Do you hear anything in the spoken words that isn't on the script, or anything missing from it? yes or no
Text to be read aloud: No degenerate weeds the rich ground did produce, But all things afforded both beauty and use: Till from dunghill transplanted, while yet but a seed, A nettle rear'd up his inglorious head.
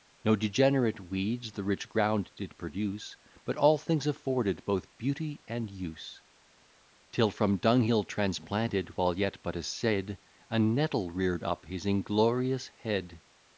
no